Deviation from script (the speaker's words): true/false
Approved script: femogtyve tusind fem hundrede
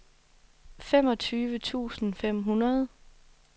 false